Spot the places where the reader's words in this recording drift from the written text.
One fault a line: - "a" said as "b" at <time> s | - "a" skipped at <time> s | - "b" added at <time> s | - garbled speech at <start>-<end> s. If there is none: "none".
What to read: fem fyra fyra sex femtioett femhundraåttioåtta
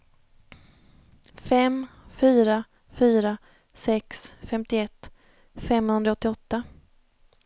none